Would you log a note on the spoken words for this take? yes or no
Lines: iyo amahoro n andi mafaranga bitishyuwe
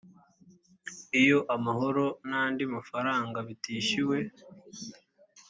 no